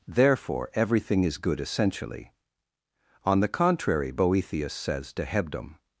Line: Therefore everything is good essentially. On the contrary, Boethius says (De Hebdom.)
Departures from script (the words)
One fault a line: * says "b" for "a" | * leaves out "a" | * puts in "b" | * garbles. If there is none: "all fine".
all fine